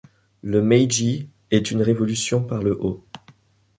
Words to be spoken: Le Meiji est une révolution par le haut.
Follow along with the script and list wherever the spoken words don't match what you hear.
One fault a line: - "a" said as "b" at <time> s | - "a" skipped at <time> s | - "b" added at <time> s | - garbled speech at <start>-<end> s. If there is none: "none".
none